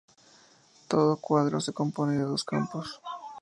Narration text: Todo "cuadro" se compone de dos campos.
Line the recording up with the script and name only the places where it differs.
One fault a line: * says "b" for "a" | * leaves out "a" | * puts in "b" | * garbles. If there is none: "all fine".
all fine